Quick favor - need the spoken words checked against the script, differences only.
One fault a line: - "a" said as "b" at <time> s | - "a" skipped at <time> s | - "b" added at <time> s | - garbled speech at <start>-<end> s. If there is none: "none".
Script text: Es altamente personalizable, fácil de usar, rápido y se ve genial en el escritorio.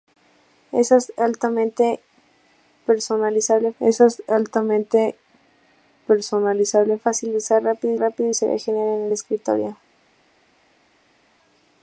- "es altamente personalizable" added at 3.8 s
- "rápido" added at 8.0 s